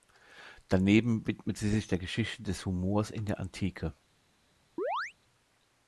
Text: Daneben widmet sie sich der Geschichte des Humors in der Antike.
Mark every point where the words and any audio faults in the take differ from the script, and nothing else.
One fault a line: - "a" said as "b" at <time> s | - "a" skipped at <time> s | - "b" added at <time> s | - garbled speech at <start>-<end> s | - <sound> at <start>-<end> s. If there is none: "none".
- chirp at 4.8-5.1 s